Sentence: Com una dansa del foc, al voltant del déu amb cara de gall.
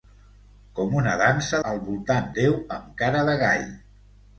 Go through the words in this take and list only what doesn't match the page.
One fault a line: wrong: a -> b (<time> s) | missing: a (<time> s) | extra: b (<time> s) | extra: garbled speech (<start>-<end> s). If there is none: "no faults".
missing: del foc (1.6 s)
missing: del (2.3 s)